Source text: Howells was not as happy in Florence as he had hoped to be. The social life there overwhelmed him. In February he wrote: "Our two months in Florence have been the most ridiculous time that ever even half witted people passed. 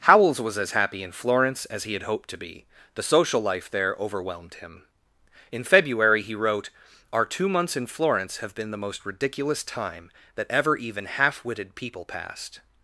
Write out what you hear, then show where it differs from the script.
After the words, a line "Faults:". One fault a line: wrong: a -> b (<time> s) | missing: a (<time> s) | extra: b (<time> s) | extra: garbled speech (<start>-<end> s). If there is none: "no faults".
Howells was as happy in Florence as he had hoped to be. The social life there overwhelmed him. In February he wrote: "Our two months in Florence have been the most ridiculous time that ever even half witted people passed.
Faults:
missing: not (0.6 s)